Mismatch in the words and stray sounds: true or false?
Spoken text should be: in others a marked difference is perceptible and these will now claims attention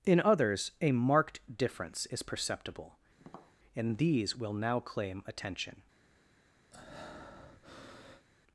true